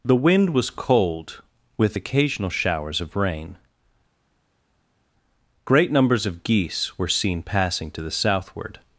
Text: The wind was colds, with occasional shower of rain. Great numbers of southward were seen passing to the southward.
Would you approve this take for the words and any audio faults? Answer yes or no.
no